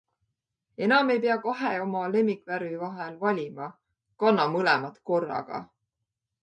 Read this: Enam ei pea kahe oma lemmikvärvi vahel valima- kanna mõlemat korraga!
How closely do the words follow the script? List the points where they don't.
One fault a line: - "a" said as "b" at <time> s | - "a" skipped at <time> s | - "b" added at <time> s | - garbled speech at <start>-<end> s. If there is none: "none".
none